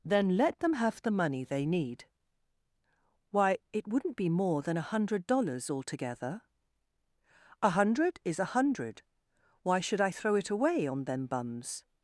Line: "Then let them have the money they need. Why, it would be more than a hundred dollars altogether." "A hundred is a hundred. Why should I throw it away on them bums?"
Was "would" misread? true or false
true